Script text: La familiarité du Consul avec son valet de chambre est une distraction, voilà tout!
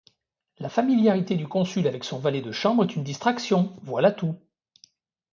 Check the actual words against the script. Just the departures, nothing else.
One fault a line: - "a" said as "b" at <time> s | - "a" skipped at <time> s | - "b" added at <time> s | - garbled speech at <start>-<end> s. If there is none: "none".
none